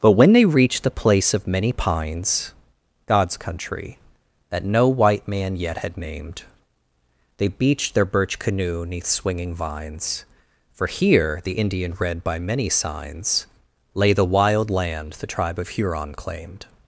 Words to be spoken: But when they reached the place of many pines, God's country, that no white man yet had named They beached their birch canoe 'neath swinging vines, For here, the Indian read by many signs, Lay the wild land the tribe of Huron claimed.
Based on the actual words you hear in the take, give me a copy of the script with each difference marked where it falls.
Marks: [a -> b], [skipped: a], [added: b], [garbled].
But when they reached the place of many pines, God's country, that no white man yet had named They beached their birch canoe 'neath swinging vines, For here, the Indian read by many signs, Lay the wild land the tribe of Huron claimed.